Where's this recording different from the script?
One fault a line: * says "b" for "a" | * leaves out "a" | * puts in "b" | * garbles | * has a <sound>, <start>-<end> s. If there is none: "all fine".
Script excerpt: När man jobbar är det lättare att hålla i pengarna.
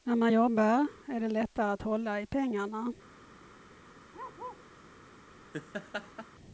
* has a bark, 4.1-4.7 s
* has a laugh, 5.5-6.3 s